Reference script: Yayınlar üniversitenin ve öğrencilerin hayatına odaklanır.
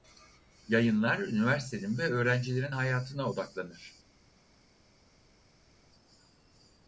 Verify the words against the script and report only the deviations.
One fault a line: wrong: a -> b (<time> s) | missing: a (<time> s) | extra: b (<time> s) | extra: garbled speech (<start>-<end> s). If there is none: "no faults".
no faults